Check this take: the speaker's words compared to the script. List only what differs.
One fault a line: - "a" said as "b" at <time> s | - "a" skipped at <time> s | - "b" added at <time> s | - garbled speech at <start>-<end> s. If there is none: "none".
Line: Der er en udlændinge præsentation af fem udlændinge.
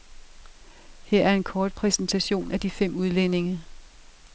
- "Der" said as "Her" at 1.0 s
- "udlændinge" said as "kort" at 1.4 s
- "de" added at 2.6 s